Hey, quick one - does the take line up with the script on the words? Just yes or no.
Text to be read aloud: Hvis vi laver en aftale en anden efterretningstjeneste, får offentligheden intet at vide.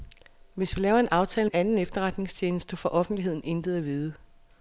yes